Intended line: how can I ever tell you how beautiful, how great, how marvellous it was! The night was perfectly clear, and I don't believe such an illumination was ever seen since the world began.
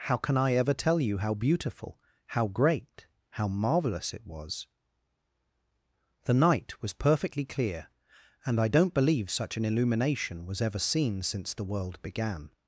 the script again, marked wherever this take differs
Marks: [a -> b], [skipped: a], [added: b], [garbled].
how can I ever tell you how beautiful, how great, how marvellous it was! The night was perfectly clear, and I don't believe such an illumination was ever seen since the world began.